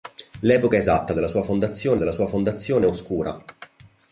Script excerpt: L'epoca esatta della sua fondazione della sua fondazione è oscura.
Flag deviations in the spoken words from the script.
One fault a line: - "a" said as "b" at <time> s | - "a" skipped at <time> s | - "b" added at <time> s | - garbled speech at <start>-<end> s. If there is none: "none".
none